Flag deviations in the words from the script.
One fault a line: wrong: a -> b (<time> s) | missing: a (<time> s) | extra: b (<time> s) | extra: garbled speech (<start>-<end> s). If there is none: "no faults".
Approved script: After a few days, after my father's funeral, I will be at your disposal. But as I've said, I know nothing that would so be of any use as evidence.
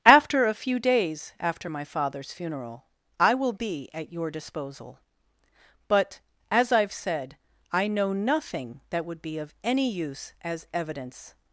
missing: so (9.2 s)